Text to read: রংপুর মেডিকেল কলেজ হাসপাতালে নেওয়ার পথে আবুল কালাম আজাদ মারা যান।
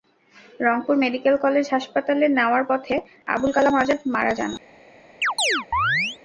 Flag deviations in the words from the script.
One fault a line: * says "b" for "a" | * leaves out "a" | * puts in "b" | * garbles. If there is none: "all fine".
all fine